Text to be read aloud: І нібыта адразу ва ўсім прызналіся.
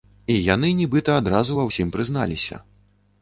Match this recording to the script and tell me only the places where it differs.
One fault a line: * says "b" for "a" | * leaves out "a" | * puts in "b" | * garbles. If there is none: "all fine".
* puts in "яны"